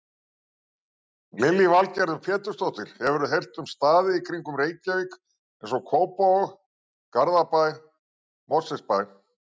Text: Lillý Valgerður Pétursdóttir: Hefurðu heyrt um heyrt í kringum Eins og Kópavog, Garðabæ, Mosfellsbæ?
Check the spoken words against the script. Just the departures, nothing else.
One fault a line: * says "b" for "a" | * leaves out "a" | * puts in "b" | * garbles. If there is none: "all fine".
* says "staði" for "heyrt"
* puts in "Reykjavík"